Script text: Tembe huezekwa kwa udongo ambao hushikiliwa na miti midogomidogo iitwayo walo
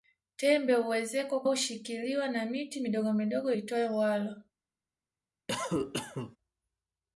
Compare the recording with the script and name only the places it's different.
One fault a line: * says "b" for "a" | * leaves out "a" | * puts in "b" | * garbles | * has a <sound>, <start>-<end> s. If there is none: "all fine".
* leaves out "kwa udongo ambao"
* has a cough, 5.5-6.4 s